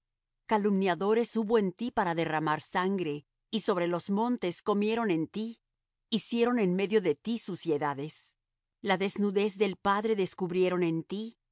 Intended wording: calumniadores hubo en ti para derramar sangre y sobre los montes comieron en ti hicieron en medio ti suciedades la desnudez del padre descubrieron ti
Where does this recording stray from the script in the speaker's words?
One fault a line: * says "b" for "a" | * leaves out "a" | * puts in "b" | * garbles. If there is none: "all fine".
* puts in "de"
* puts in "en"